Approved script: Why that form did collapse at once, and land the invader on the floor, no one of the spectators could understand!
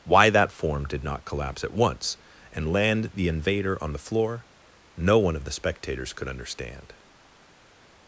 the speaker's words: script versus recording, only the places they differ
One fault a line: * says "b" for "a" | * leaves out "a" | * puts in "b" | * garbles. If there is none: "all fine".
* puts in "not"